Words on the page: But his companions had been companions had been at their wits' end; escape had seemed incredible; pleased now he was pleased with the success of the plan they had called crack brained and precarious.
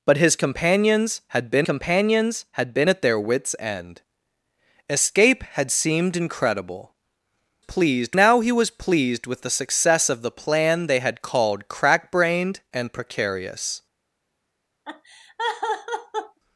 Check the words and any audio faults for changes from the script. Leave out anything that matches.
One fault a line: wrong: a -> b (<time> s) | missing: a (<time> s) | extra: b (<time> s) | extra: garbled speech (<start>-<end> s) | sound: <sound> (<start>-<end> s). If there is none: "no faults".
sound: laugh (14.8-16.4 s)